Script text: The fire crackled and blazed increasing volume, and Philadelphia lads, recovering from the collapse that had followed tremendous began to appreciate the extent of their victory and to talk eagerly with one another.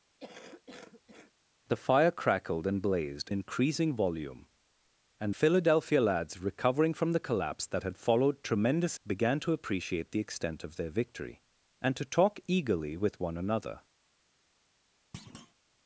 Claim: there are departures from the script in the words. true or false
false